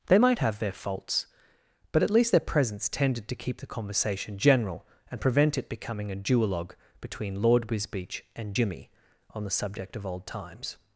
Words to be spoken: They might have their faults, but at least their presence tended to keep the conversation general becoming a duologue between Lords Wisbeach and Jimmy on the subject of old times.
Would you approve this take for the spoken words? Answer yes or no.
no